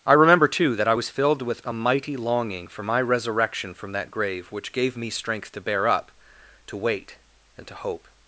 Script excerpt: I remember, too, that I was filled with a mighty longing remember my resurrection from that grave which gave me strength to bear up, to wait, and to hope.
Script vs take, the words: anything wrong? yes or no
yes